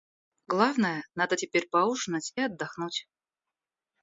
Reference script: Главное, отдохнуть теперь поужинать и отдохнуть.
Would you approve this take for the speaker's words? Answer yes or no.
no